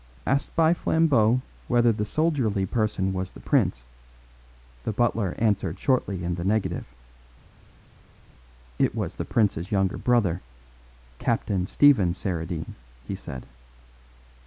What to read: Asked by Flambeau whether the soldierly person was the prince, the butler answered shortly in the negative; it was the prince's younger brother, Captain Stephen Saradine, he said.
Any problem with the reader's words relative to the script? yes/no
no